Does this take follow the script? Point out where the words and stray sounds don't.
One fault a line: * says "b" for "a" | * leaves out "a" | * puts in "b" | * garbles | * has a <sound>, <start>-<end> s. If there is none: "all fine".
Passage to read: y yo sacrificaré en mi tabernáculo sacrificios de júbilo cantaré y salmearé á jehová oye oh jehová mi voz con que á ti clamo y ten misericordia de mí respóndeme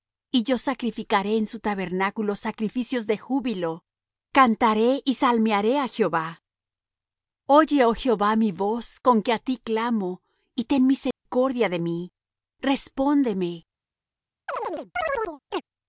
* says "su" for "mi"
* has a dropout, 11.1-11.3 s
* has a chirp, 14.5-15.6 s